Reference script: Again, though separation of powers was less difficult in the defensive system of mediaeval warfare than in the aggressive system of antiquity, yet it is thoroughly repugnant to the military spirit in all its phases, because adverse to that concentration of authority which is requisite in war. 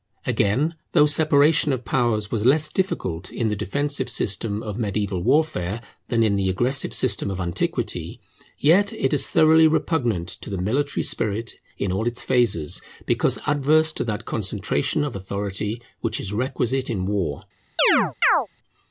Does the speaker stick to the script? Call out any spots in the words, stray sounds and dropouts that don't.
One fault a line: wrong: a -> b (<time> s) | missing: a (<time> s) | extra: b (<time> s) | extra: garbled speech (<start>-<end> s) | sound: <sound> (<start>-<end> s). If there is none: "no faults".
sound: chirp (17.8-18.5 s)